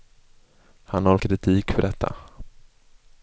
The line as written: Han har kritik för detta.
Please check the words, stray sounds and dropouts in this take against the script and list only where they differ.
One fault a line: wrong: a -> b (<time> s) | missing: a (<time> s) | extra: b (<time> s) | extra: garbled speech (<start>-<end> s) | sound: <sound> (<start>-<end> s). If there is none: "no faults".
no faults